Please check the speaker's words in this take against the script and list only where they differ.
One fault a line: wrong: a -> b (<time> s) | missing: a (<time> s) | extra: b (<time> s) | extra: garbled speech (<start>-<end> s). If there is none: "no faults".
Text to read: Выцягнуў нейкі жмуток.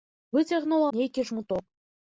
no faults